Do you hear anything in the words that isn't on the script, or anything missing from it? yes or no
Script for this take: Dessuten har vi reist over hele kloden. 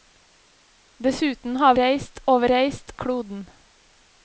yes